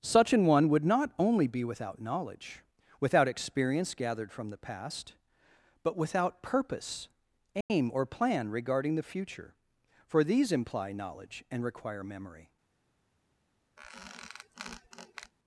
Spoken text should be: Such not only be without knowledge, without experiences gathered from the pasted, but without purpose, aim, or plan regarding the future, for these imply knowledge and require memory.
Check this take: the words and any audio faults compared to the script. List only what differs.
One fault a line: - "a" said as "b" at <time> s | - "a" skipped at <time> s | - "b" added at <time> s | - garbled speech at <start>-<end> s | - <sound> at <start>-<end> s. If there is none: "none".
- "an one would" added at 0.3 s
- "experiences" said as "experience" at 3.3 s
- "pasted" said as "past" at 4.6 s
- dropout at 7.6-7.7 s
- squeak at 13.8-15.3 s